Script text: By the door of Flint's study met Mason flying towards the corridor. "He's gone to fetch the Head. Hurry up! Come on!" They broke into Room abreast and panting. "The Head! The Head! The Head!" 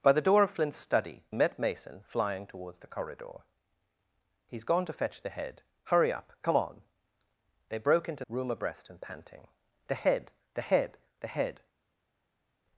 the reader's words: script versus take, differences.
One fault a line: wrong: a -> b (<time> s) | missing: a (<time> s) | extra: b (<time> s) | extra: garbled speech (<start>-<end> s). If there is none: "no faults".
no faults